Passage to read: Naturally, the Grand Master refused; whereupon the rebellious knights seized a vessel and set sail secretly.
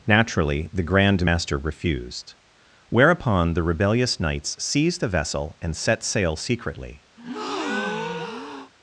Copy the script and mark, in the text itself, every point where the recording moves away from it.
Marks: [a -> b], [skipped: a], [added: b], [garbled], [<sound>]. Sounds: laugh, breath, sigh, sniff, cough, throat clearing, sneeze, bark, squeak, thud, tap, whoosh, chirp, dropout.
Naturally, the Grand Master refused; whereupon the rebellious knights seized [a -> the] vessel and set sail secretly. [breath]